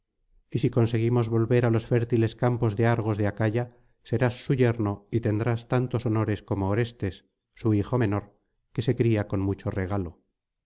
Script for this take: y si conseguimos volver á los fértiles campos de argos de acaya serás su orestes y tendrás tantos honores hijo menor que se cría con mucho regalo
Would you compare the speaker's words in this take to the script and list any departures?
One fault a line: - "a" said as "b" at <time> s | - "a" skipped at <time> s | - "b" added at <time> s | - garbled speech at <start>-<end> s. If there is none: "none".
- "orestes" said as "yerno" at 4.6 s
- "como orestes su" added at 6.4 s